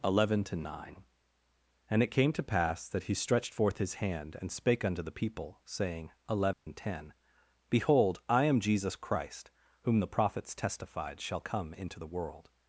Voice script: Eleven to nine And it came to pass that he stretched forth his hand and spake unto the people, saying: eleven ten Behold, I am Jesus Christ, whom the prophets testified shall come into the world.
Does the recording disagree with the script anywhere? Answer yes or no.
no